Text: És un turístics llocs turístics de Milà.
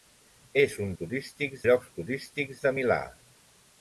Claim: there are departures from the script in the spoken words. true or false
false